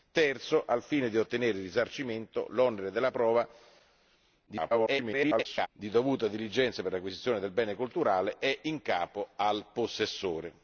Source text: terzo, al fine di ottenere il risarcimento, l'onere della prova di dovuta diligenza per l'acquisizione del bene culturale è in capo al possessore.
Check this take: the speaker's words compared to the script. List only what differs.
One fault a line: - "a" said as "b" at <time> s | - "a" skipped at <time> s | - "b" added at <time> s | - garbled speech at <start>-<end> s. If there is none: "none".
- garbled speech at 4.5-5.7 s